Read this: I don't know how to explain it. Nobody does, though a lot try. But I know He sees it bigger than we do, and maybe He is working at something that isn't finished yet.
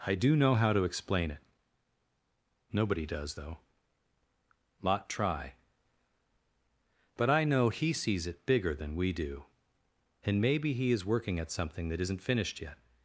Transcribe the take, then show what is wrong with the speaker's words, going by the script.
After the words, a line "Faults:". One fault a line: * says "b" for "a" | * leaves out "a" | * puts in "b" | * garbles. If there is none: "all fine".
I do know how to explain it. Nobody does, though lot try. But I know He sees it bigger than we do, and maybe He is working at something that isn't finished yet.
Faults:
* says "do" for "don't"
* leaves out "a"